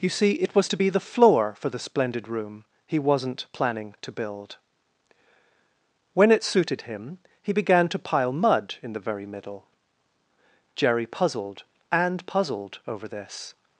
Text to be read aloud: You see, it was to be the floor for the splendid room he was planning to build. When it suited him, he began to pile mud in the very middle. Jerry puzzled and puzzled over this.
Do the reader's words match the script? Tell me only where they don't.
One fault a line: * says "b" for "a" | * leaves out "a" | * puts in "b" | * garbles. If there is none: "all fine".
* says "wasn't" for "was"